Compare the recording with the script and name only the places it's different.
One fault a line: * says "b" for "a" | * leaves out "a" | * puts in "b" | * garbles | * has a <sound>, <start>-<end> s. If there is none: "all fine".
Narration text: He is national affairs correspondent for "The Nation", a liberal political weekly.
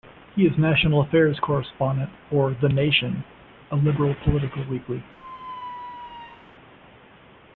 * has a squeak, 5.2-6.5 s